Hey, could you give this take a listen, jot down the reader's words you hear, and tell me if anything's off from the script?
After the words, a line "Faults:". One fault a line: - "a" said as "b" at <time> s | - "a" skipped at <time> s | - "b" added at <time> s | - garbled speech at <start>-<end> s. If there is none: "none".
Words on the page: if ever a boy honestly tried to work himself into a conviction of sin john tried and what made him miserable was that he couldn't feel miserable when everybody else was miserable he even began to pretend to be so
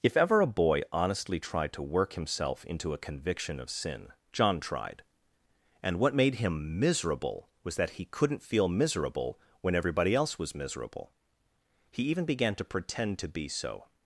if ever a boy honestly tried to work himself into a conviction of sin john tried and what made him miserable was that he couldn't feel miserable when everybody else was miserable he even began to pretend to be so
Faults:
none